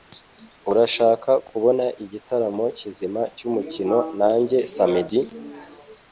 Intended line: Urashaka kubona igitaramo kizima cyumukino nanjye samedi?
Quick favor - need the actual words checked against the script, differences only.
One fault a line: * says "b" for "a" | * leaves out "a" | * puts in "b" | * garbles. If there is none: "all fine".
all fine